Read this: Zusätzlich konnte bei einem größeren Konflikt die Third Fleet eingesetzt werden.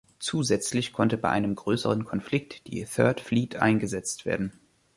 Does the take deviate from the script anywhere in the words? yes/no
no